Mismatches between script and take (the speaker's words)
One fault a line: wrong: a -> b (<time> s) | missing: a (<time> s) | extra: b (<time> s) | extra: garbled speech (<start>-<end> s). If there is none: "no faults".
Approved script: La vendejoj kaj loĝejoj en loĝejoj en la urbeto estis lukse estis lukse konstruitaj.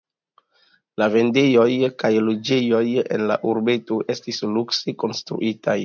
missing: loĝejoj en (3.3 s)
missing: estis lukse (5.0 s)